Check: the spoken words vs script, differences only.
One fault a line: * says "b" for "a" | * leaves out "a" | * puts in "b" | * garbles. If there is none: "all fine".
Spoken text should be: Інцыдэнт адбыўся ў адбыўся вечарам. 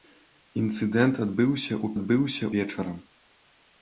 all fine